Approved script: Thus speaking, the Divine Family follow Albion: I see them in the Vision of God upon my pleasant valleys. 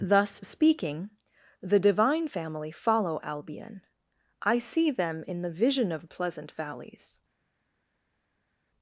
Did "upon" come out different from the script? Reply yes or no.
yes